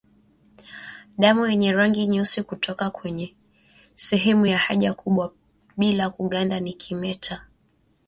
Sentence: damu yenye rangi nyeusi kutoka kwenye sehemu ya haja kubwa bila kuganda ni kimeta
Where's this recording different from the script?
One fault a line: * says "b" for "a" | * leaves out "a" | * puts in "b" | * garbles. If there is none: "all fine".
all fine